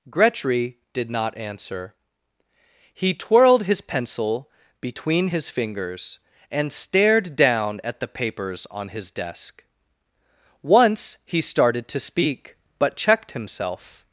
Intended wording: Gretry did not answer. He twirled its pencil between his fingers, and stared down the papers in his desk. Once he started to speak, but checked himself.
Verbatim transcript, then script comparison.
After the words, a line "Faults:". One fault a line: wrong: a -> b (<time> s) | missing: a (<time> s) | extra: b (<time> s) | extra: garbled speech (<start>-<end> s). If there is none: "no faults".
Gretry did not answer. He twirled his pencil between his fingers, and stared down at the papers on his desk. Once he started to speak, but checked himself.
Faults:
wrong: its -> his (3.6 s)
extra: at (7.8 s)
wrong: in -> on (8.7 s)